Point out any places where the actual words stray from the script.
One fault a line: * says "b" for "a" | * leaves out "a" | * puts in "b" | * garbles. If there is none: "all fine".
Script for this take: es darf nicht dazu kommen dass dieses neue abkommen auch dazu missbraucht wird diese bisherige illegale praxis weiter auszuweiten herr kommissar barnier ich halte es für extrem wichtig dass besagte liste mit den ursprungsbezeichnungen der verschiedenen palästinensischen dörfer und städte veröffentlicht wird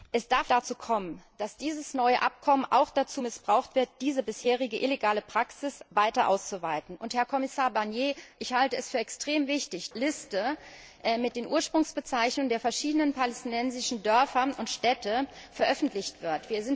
* leaves out "nicht"
* leaves out "dass besagte"